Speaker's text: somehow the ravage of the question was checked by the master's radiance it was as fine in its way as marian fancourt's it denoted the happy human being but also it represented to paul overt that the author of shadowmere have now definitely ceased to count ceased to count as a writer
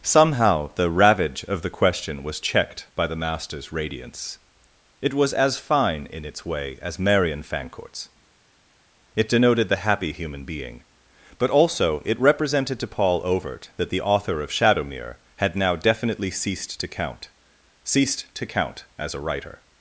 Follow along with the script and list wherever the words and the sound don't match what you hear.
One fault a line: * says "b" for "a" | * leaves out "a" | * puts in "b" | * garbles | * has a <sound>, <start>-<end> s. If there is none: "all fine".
* says "had" for "have"